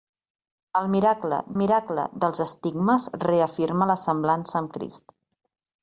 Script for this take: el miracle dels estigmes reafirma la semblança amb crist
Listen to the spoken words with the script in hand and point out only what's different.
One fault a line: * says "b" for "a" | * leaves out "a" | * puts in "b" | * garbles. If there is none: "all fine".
* puts in "miracle"